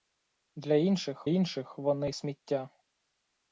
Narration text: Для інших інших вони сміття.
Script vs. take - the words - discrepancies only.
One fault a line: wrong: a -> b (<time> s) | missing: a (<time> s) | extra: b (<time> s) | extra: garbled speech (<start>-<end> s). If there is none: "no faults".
no faults